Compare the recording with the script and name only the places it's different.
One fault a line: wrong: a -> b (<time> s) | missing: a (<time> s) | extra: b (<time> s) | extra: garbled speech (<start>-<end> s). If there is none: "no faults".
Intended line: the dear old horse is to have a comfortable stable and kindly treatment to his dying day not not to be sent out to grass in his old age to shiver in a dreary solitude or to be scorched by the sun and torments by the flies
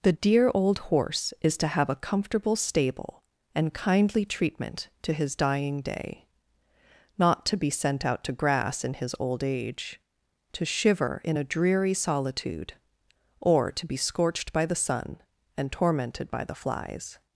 missing: not (7.4 s)
wrong: torments -> tormented (15.7 s)